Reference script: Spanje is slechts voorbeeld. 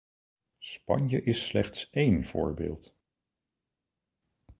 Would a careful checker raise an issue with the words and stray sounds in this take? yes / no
yes